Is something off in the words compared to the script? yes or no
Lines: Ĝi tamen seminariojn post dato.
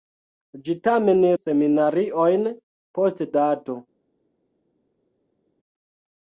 no